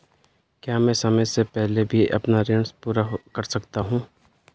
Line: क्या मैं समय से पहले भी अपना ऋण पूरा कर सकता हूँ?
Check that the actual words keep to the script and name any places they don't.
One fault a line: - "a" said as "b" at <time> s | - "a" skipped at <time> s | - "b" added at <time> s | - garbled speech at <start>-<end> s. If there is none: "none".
none